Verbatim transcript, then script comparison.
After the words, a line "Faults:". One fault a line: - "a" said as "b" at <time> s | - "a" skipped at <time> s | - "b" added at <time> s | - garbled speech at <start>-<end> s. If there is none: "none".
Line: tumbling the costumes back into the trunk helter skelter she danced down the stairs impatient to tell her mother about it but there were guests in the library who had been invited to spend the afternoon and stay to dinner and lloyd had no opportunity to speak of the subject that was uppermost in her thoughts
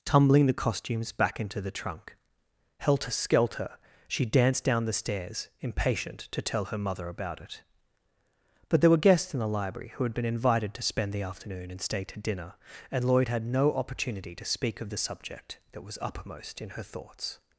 tumbling the costumes back into the trunk helter skelter she danced down the stairs impatient to tell her mother about it but there were guests in the library who had been invited to spend the afternoon and stay to dinner and lloyd had no opportunity to speak of the subject that was uppermost in her thoughts
Faults:
none